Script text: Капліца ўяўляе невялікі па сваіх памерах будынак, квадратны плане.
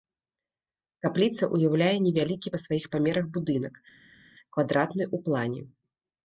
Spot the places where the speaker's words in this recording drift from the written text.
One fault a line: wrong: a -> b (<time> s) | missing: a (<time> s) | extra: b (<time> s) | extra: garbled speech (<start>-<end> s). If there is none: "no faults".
extra: ў (5.1 s)